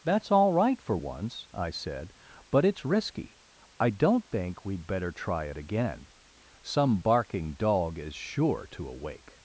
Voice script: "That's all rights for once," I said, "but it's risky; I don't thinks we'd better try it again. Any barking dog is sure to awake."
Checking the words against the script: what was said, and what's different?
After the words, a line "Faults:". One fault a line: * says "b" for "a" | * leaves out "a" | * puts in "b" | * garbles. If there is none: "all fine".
"That's all right for once," I said, "but it's risky; I don't think we'd better try it again. Some barking dog is sure to awake."
Faults:
* says "right" for "rights"
* says "think" for "thinks"
* says "Some" for "Any"